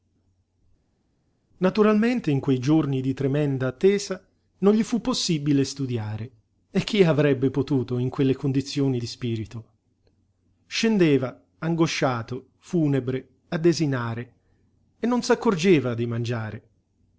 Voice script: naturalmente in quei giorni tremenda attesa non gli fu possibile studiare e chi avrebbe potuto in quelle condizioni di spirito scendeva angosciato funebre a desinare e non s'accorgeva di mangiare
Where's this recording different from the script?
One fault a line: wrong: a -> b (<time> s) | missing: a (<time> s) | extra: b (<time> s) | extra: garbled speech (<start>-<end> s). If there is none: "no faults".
extra: di (3.0 s)